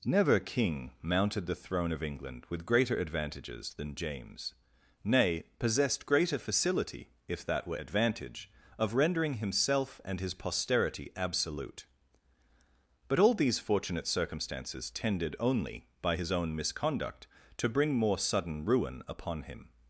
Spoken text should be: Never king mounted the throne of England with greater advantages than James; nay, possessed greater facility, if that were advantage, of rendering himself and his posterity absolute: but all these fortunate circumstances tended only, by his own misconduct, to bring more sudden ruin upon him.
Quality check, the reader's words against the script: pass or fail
pass